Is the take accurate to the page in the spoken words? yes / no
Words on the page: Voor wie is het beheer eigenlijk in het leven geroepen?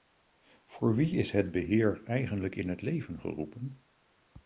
yes